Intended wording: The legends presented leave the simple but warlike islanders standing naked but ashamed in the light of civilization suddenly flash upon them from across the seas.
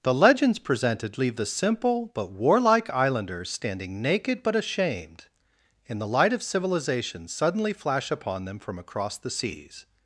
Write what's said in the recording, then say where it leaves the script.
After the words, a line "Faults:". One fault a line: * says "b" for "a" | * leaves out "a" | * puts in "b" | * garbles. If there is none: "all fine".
The legends presented leave the simple but warlike islanders standing naked but ashamed in the light of civilization suddenly flash upon them from across the seas.
Faults:
all fine